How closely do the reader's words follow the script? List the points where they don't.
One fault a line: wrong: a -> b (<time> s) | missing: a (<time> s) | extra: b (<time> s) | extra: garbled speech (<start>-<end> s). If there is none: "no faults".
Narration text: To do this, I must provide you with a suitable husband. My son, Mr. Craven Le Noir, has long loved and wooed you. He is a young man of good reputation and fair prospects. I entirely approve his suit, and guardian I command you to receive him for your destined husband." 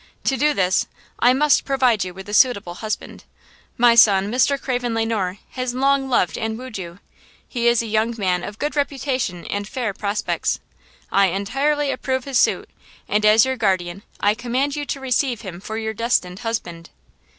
extra: as your (13.3 s)